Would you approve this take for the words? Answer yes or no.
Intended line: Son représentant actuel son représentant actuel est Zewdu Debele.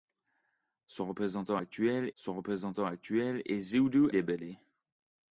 yes